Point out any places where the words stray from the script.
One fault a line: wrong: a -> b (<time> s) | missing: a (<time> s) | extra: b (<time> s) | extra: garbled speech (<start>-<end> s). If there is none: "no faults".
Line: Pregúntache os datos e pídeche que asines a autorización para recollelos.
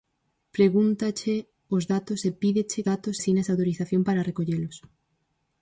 wrong: que -> datos (2.9 s)